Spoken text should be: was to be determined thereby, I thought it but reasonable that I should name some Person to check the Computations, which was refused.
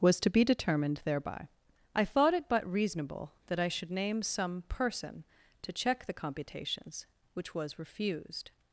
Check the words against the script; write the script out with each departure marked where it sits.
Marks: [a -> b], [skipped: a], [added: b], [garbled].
was to be determined thereby, I thought it but reasonable that I should name some Person to check the Computations, which was refused.